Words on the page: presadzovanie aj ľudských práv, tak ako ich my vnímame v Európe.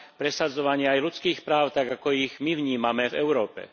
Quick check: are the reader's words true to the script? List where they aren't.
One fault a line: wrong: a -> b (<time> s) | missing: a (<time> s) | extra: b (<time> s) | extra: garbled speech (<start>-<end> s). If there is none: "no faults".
no faults